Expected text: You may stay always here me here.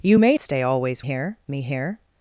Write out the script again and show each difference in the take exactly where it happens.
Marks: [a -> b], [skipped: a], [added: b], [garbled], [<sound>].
You may stay always here me here.